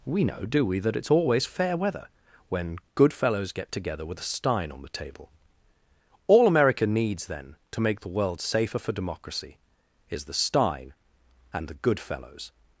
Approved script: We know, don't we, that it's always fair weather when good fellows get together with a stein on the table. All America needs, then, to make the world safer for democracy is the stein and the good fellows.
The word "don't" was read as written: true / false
false